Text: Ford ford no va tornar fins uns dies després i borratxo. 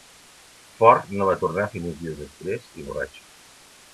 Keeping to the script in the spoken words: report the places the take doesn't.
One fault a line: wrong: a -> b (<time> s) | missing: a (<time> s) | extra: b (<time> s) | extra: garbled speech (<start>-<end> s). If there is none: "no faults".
missing: ford (1.1 s)